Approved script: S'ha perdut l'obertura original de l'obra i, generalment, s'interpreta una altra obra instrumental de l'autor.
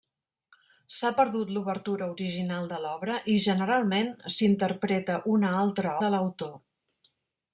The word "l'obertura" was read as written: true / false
true